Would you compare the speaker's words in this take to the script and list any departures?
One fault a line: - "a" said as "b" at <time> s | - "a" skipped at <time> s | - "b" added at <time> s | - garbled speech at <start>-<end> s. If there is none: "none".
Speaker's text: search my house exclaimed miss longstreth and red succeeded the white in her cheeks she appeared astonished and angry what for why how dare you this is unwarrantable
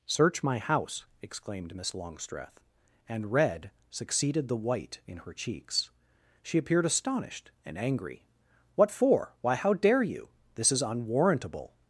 none